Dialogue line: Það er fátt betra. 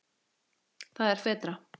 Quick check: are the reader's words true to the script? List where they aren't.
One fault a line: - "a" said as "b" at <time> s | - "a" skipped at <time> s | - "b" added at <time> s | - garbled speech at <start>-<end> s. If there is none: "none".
- "fátt" skipped at 1.2 s